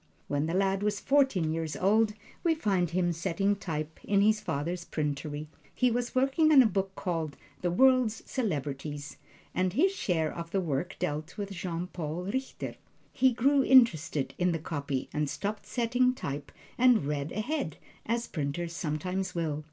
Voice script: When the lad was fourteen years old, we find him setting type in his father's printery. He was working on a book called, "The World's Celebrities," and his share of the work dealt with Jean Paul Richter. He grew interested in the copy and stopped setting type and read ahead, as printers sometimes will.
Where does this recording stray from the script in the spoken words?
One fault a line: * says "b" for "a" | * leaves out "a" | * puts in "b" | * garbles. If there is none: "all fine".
all fine